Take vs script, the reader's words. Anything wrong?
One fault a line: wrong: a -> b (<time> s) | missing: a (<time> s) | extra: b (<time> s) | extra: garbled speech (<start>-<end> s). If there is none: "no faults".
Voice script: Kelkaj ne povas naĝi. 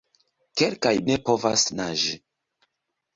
no faults